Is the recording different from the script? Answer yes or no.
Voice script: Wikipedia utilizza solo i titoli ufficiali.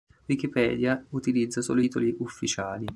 no